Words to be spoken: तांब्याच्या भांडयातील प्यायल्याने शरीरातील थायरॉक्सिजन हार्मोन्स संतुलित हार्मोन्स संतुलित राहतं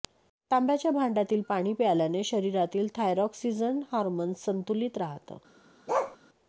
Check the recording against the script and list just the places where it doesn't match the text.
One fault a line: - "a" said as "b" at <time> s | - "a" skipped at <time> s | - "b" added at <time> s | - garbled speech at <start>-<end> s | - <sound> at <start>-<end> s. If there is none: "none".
- "पाणी" added at 1.5 s
- "हार्मोन्स संतुलित" skipped at 5.0 s
- bark at 5.9-6.2 s